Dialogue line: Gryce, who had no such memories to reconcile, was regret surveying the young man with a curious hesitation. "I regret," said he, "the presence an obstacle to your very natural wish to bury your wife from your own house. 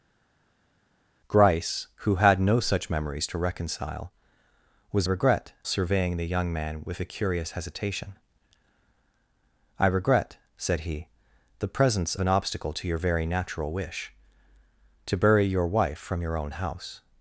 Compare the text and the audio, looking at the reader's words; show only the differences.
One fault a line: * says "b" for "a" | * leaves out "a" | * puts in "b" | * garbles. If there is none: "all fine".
all fine